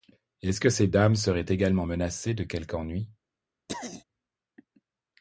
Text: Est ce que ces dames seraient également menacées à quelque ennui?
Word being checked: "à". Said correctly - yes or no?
no